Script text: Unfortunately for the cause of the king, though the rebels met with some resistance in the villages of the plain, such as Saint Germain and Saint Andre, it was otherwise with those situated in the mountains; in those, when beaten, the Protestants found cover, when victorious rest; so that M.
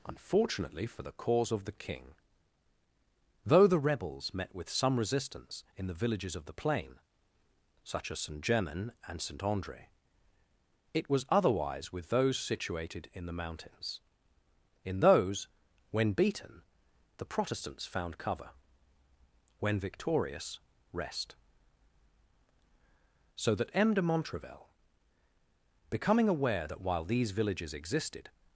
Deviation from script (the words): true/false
true